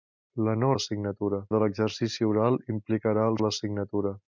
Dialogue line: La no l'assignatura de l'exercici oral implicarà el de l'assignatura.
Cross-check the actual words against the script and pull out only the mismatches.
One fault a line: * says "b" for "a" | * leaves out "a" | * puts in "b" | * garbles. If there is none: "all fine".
all fine